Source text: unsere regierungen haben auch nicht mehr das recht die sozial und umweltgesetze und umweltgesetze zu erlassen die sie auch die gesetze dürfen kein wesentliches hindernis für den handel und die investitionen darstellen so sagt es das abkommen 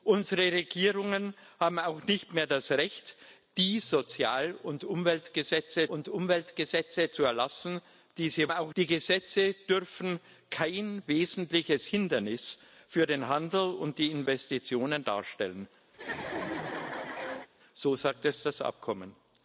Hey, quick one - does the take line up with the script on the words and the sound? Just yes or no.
no